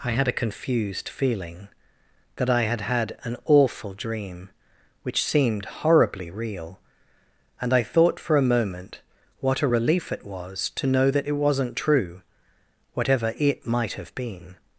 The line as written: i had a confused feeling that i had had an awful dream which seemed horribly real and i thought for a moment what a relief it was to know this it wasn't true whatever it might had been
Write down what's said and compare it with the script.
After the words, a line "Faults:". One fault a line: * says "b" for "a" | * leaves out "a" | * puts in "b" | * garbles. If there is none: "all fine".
i had a confused feeling that i had had an awful dream which seemed horribly real and i thought for a moment what a relief it was to know that it wasn't true whatever it might have been
Faults:
* says "that" for "this"
* says "have" for "had"